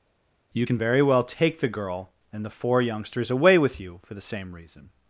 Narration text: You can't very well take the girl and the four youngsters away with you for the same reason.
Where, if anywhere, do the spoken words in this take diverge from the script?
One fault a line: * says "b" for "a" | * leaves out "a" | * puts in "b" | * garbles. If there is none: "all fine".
* says "can" for "can't"